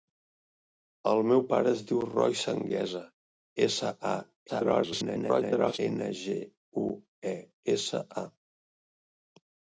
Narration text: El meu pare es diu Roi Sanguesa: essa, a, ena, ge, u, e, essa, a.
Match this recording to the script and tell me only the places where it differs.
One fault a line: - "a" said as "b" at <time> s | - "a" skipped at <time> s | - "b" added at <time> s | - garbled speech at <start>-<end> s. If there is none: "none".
- garbled speech at 4.5-5.8 s